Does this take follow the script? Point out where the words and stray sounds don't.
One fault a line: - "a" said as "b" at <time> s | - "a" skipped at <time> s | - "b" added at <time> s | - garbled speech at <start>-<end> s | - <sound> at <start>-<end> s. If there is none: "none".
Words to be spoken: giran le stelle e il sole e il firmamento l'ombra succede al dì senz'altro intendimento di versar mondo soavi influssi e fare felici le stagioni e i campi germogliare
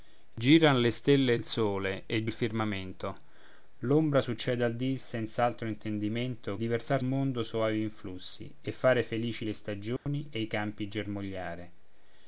- dropout at 10.0-10.1 s